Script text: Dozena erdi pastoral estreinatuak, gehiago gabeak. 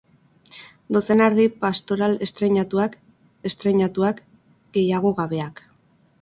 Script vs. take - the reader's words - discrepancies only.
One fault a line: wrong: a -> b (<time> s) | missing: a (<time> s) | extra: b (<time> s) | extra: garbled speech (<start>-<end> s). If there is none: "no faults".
extra: estreinatuak (3.5 s)